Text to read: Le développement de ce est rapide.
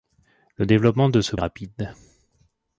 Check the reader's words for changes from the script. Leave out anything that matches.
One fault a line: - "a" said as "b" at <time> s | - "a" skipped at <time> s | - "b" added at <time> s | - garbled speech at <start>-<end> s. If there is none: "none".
none